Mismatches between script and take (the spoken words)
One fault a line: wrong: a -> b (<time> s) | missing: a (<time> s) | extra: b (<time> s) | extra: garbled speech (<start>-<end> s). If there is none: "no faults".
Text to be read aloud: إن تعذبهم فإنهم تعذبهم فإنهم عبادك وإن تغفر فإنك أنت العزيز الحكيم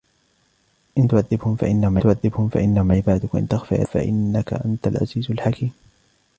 no faults